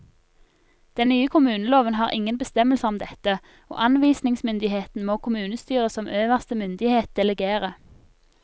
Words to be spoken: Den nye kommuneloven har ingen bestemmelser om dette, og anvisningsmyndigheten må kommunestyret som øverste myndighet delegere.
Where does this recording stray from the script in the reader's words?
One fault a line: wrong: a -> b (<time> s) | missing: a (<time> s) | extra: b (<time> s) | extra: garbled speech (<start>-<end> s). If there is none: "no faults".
no faults